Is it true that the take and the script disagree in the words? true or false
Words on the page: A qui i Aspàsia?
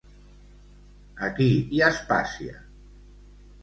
false